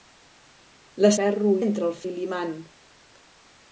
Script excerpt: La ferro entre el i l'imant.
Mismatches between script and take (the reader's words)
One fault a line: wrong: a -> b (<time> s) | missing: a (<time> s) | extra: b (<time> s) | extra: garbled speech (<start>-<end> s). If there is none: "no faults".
no faults